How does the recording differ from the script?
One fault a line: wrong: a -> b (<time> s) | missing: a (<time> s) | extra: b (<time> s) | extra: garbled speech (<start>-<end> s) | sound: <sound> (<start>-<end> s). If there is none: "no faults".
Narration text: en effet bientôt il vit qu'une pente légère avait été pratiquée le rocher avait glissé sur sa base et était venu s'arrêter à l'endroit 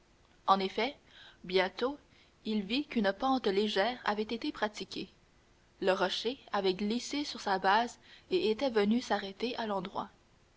no faults